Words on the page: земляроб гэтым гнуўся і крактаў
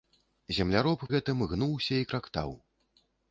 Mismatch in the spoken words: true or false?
false